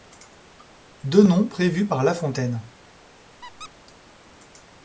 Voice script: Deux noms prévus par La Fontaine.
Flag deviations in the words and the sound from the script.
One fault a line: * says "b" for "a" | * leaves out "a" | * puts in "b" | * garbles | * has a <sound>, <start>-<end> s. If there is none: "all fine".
* has a squeak, 3.4-3.7 s